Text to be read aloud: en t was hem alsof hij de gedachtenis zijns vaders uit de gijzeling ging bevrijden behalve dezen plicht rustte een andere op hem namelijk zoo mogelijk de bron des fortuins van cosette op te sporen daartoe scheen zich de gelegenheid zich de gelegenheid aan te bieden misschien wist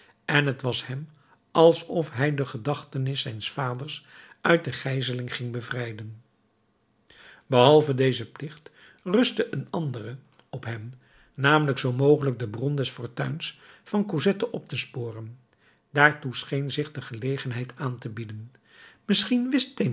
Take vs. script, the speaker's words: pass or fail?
fail